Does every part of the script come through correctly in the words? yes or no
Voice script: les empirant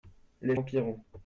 yes